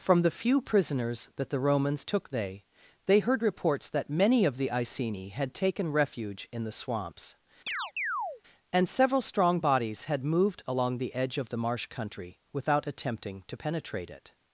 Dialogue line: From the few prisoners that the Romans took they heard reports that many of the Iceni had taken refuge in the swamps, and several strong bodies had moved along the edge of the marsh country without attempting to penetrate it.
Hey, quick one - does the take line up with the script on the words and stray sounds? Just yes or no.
no